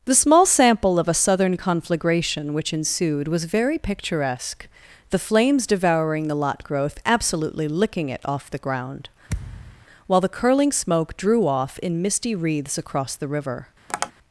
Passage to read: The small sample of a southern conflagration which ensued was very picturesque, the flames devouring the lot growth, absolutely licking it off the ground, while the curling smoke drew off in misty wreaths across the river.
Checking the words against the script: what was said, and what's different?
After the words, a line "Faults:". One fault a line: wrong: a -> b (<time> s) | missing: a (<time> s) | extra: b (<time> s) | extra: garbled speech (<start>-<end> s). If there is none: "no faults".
The small sample of a southern conflagration which ensued was very picturesque, the flames devouring the lot growth, absolutely licking it off the ground, while the curling smoke drew off in misty wreaths across the river.
Faults:
no faults